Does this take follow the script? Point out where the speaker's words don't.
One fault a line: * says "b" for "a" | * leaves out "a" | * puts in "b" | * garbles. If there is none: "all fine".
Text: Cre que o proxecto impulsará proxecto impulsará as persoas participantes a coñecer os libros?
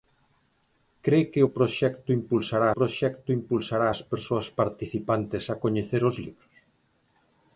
all fine